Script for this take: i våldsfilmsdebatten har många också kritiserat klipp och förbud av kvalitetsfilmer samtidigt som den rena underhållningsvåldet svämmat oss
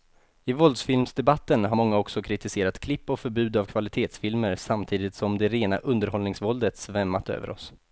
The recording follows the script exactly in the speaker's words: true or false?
false